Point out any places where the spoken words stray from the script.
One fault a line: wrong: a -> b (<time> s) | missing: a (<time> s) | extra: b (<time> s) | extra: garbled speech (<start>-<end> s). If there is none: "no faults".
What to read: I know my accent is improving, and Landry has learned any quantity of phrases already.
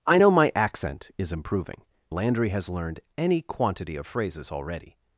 missing: and (1.8 s)